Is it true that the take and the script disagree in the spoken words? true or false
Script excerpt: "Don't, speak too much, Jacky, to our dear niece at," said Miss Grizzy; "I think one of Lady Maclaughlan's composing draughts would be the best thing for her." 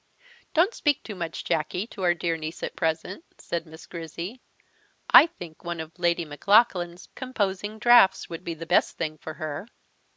true